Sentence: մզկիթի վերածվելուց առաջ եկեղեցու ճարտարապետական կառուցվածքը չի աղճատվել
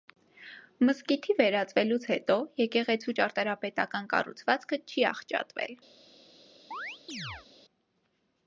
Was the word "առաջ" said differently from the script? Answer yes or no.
yes